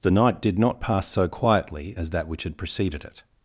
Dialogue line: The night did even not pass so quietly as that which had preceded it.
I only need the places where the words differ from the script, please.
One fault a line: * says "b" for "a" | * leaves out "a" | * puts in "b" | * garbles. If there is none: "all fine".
* leaves out "even"